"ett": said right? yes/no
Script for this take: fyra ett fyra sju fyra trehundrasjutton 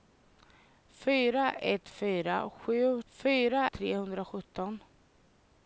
yes